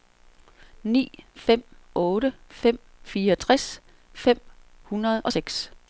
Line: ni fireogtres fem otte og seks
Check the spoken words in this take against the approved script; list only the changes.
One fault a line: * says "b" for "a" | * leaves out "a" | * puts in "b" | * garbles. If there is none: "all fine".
* puts in "fem otte fem"
* says "hundrede" for "otte"